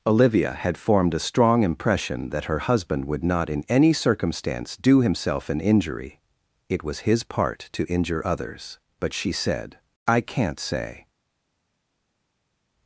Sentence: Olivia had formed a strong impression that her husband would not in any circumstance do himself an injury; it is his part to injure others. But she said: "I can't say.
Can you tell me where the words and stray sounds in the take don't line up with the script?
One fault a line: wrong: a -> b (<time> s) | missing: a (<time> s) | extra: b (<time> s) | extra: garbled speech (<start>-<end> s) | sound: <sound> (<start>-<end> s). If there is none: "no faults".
wrong: is -> was (6.8 s)